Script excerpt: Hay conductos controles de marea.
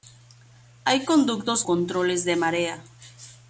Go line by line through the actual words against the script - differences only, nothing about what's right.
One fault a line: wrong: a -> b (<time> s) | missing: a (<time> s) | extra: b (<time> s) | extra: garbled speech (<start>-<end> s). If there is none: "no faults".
no faults